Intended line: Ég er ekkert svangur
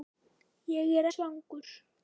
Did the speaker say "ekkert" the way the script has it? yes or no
no